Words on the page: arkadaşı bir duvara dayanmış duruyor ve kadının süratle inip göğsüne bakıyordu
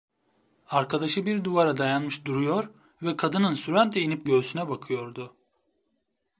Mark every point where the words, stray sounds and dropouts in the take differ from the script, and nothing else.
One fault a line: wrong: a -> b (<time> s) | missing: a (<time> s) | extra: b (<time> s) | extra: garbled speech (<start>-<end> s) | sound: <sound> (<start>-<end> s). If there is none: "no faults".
no faults